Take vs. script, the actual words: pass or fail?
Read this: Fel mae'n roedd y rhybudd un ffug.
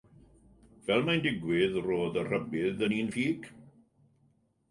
fail